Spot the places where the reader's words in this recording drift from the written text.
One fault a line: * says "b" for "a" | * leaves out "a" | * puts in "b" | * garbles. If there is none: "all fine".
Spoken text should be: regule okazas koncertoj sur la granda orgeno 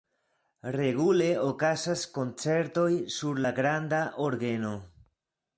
all fine